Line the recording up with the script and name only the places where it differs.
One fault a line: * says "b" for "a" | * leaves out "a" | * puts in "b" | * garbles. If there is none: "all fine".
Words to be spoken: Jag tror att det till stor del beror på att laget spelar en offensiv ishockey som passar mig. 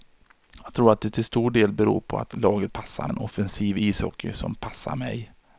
* says "passar" for "spelar"